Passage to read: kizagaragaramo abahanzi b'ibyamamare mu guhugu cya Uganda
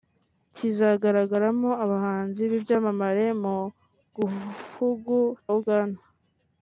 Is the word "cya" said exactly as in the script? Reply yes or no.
no